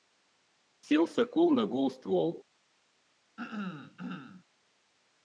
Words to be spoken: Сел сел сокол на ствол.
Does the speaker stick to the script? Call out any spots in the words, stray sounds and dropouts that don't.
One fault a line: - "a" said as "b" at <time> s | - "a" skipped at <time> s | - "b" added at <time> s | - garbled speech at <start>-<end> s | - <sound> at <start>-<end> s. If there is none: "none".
- "сел" skipped at 1.1 s
- "гол" added at 1.7 s
- throat clearing at 3.4-4.4 s